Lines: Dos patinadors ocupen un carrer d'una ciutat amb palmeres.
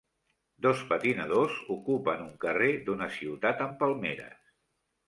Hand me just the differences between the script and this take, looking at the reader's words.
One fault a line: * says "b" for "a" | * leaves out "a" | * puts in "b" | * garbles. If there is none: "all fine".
all fine